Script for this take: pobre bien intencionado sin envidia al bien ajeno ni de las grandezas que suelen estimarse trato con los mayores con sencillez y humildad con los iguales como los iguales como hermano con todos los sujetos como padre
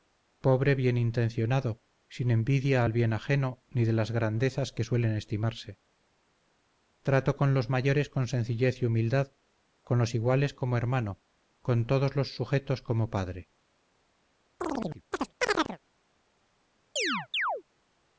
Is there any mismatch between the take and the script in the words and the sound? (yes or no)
yes